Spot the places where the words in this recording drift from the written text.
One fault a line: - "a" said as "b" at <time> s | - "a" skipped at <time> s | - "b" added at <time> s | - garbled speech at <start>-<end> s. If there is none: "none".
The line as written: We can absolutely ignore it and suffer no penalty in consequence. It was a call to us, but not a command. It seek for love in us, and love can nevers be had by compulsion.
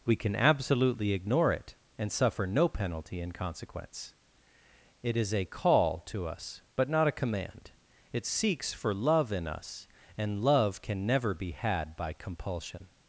- "was" said as "is" at 5.2 s
- "seek" said as "seeks" at 8.3 s
- "nevers" said as "never" at 11.1 s